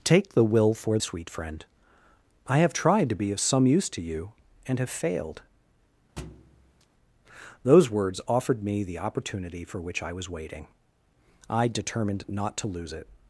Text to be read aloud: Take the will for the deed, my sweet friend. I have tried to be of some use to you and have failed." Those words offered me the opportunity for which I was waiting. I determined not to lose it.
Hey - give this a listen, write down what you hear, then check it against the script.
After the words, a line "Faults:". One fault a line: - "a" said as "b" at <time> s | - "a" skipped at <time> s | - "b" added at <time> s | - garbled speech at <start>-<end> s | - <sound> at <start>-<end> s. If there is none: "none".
Take the will for sweet friend. I have tried to be of some use to you and have failed." Those words offered me the opportunity for which I was waiting. I determined not to lose it.
Faults:
- "the deed my" skipped at 1.0 s
- thud at 6.2-6.9 s